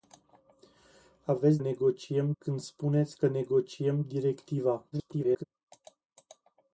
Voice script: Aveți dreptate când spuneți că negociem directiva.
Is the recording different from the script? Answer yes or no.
yes